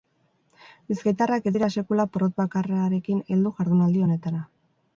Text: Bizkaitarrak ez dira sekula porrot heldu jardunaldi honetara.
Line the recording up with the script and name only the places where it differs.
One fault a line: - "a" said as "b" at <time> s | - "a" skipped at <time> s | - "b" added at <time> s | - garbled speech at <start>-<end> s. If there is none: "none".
- "bakarrarekin" added at 2.4 s